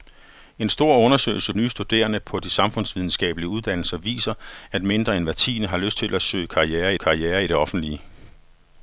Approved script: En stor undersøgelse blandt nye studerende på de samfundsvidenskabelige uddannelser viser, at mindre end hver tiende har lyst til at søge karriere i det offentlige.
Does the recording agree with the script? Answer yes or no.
no